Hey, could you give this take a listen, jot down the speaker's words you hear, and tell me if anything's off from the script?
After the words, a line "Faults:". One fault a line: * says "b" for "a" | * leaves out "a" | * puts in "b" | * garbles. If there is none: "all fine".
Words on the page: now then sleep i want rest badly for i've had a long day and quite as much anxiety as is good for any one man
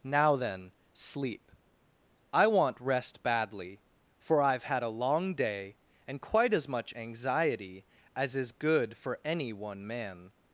now then sleep i want rest badly for i've had a long day and quite as much anxiety as is good for any one man
Faults:
all fine